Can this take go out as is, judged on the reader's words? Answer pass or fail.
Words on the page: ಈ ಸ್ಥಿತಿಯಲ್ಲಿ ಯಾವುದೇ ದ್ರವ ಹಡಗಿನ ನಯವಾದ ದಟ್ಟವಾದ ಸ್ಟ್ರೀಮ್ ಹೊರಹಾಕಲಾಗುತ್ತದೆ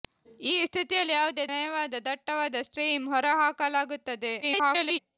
fail